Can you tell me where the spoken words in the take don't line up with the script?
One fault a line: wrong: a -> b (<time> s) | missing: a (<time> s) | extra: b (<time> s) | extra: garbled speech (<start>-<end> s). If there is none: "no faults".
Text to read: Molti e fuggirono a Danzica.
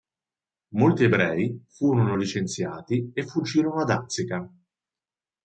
extra: ebrei furono licenziati (1.0 s)